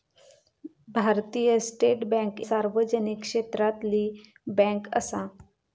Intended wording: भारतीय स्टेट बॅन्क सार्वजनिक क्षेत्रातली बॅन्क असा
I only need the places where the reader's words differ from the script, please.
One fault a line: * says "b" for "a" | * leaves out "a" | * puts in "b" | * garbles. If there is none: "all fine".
all fine